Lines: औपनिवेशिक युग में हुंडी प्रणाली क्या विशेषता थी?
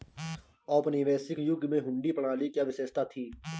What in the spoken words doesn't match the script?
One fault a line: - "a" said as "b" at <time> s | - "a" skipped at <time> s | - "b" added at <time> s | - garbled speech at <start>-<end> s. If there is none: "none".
none